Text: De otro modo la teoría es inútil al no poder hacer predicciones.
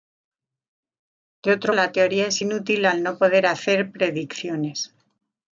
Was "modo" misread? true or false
true